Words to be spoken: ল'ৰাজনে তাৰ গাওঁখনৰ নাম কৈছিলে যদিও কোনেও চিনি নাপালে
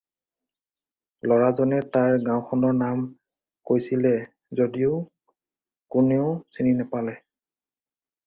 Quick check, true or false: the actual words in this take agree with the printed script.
true